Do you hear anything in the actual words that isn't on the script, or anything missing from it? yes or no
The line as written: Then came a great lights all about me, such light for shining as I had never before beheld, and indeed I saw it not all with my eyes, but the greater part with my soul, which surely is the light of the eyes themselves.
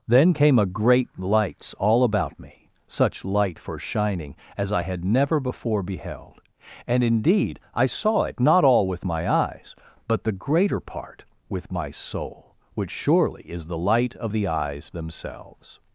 no